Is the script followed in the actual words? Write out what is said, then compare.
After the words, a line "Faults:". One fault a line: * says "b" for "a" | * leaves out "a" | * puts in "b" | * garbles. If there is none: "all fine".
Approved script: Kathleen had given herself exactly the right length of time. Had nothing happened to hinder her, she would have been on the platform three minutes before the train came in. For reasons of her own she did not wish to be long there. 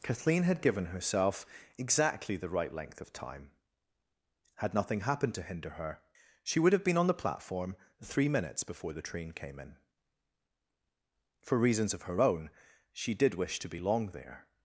Kathleen had given herself exactly the right length of time. Had nothing happened to hinder her, she would have been on the platform three minutes before the train came in. For reasons of her own she did wish to be long there.
Faults:
* leaves out "not"